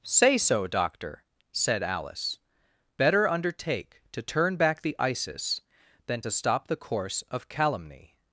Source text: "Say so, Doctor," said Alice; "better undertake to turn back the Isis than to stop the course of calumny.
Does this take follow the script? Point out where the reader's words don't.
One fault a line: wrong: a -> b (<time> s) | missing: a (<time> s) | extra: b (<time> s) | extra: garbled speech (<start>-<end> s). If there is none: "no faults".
no faults